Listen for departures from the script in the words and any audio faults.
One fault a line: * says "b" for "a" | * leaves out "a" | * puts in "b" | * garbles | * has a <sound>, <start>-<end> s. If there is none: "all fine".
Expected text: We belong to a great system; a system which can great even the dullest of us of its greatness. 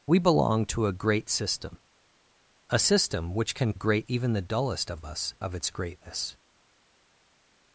all fine